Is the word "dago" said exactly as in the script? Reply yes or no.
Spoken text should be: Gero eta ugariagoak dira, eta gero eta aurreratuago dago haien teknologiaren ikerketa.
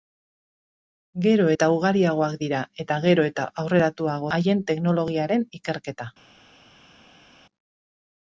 no